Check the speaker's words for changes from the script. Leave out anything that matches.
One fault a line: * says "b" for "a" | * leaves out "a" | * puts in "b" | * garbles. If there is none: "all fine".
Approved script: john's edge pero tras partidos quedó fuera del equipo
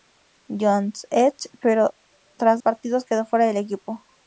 all fine